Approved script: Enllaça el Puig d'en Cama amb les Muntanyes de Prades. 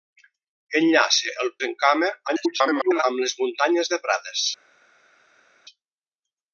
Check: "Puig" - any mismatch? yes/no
yes